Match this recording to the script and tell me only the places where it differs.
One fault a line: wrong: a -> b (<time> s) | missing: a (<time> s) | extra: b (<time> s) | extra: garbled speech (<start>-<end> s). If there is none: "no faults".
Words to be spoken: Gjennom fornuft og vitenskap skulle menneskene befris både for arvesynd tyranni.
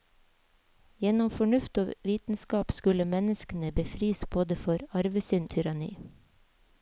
no faults